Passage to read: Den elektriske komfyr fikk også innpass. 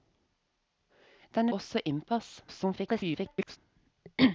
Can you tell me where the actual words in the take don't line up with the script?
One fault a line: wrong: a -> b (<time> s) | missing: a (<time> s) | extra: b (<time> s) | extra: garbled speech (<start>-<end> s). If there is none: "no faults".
missing: elektriske komfyr fikk (1.5 s)
extra: garbled speech (2.5-3.6 s)